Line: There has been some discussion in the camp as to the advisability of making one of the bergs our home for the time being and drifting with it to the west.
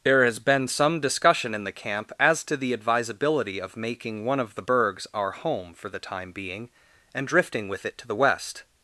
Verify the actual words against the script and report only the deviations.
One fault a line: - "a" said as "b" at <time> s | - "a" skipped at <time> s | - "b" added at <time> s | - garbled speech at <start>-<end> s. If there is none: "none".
none